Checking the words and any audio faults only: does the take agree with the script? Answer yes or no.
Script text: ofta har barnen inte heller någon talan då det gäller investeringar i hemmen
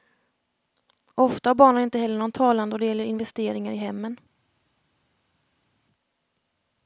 yes